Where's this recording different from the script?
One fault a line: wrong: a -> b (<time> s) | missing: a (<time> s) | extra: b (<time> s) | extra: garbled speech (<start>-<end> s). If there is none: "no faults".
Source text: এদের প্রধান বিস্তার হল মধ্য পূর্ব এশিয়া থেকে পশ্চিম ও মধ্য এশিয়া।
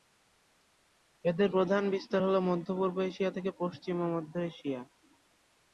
no faults